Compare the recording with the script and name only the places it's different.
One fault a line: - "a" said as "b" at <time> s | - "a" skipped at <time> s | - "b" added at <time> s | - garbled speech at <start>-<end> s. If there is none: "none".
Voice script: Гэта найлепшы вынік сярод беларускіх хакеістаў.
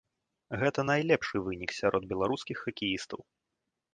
none